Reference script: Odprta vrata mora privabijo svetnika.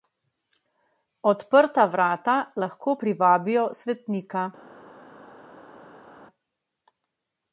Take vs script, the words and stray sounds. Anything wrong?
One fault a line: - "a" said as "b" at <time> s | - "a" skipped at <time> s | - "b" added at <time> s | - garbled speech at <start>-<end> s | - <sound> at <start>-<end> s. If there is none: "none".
- "mora" said as "lahko" at 2.6 s